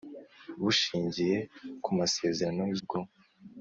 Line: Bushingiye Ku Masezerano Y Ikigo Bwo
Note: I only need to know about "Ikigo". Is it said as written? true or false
false